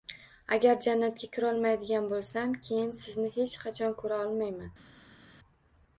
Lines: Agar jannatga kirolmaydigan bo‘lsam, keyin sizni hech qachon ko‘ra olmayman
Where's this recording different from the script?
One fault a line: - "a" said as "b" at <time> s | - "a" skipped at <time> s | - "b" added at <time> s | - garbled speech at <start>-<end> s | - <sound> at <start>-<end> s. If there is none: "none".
none